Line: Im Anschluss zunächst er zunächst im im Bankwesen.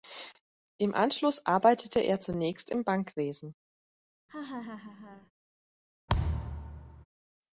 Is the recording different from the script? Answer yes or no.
yes